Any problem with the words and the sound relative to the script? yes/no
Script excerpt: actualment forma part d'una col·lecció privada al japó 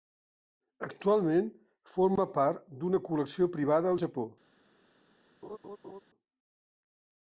yes